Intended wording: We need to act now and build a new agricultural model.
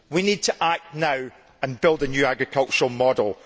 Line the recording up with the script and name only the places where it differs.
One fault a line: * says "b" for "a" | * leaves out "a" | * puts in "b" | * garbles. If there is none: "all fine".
all fine